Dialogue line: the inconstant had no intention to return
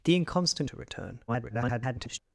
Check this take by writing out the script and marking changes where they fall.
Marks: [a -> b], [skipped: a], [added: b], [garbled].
the inconstant [skipped: had no intention] to return [garbled]